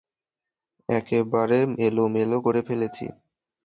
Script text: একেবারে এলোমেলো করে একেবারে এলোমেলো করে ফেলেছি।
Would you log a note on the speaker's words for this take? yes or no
yes